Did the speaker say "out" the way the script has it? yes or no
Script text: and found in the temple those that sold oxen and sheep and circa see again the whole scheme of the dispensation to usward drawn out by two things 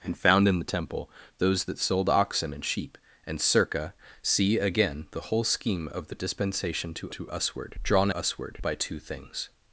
no